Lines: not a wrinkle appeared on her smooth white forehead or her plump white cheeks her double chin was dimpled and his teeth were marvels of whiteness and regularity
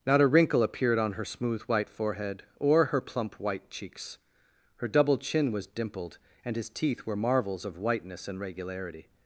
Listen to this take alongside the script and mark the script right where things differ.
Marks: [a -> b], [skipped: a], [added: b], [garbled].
not a wrinkle appeared on her smooth white forehead or her plump white cheeks her double chin was dimpled and his teeth were marvels of whiteness and regularity